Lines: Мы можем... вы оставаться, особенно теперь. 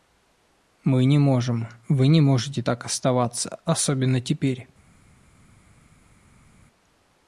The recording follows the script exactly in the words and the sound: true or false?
false